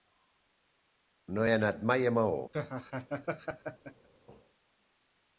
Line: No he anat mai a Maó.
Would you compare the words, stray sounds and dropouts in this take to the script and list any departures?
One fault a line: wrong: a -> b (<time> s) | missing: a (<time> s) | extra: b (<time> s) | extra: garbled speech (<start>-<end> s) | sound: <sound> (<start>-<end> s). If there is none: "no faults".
sound: laugh (2.5-4.1 s)